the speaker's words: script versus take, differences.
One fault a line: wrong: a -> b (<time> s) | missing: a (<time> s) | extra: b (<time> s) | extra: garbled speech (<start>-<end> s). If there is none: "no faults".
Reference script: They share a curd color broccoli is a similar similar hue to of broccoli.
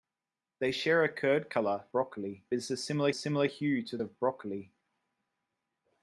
no faults